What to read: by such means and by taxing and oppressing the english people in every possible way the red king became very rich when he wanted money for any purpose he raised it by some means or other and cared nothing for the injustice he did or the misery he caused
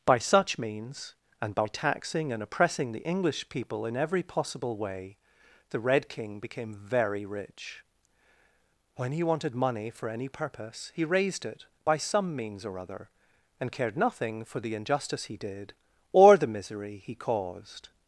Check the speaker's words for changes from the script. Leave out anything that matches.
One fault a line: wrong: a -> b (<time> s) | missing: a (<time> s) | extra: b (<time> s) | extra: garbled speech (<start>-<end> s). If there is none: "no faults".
no faults